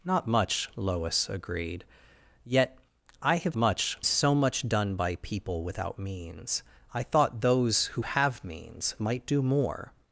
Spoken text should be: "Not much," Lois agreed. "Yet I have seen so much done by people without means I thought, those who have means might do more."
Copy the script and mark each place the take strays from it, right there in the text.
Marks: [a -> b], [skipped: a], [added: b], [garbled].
"Not much," Lois agreed. "Yet I have [seen -> much] so much done by people without means I thought, those who have means might do more."